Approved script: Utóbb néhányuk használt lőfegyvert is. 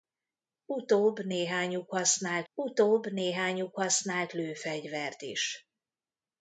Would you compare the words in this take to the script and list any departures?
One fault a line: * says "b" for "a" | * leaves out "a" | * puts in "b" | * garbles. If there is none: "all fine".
* puts in "utóbb néhányuk használt"